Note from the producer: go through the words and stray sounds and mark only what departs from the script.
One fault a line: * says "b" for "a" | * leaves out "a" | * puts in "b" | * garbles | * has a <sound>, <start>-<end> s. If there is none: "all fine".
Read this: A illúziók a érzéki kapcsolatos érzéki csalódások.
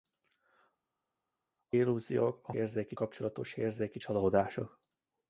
all fine